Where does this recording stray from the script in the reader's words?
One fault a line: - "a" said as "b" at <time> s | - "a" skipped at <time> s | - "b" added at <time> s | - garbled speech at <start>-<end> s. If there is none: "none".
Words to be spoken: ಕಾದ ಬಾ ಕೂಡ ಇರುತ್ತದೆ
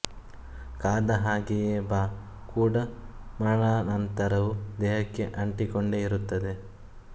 - "ಹಾಗೆಯೇ" added at 1.2 s
- "ಮರಣಾನಂತರವೂ ದೇಹಕ್ಕೆ ಅಂಟಿಕೊಂಡೇ" added at 3.4 s